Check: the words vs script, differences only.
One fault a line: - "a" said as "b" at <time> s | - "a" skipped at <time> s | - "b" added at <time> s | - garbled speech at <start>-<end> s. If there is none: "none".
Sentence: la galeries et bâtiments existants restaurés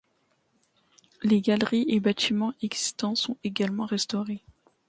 - "la" said as "les" at 1.2 s
- "sont également" added at 3.1 s